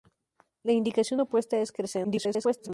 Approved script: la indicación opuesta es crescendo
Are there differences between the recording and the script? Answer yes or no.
yes